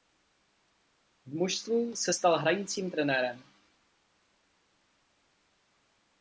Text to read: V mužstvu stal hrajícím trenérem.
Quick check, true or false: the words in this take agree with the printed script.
false